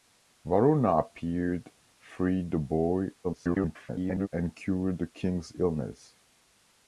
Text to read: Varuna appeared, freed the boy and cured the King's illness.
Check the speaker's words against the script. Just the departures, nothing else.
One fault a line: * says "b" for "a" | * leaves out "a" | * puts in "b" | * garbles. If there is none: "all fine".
* garbles